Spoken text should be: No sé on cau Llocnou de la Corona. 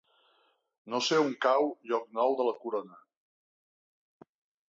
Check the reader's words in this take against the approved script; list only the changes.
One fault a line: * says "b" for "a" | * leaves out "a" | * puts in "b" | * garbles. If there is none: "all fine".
all fine